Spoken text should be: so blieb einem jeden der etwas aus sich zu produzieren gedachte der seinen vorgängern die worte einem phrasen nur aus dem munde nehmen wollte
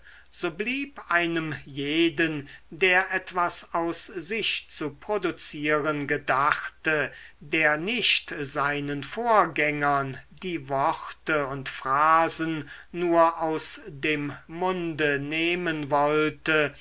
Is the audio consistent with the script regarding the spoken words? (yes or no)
no